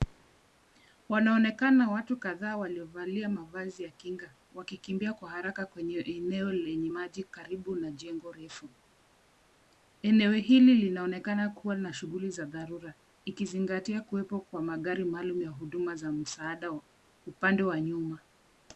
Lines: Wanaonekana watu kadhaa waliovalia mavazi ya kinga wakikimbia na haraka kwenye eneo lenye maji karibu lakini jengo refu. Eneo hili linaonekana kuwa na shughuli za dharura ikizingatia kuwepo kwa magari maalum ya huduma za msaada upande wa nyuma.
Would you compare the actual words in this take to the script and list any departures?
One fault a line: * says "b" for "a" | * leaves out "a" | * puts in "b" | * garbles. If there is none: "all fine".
* says "kwa" for "na"
* says "na" for "lakini"